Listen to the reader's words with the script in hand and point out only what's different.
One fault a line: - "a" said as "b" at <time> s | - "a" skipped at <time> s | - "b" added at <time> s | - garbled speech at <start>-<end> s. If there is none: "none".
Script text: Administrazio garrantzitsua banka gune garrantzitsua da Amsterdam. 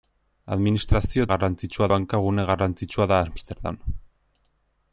none